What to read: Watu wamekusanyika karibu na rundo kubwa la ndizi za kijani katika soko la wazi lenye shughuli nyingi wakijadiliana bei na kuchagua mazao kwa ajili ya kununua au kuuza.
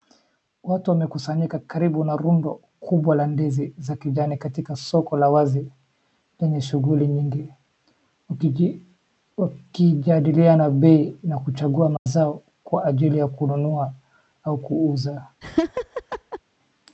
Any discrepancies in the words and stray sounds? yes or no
yes